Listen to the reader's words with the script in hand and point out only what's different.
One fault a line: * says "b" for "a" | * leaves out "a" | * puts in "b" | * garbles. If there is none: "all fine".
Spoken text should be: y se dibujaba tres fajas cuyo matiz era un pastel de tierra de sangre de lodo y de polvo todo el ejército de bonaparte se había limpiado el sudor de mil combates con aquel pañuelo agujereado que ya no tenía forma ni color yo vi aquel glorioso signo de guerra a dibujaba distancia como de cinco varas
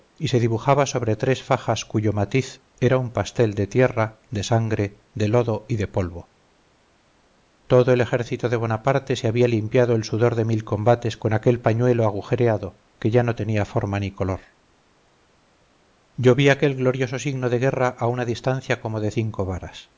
* puts in "sobre"
* says "una" for "dibujaba"